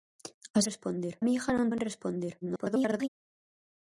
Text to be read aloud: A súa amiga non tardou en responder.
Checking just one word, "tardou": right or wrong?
wrong